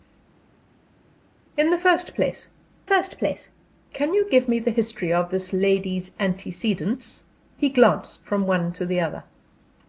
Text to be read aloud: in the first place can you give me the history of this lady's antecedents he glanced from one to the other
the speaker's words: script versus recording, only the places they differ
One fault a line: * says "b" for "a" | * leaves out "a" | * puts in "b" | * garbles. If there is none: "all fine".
* puts in "first place"